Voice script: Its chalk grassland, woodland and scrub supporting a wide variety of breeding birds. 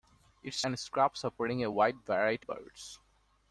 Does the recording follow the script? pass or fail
fail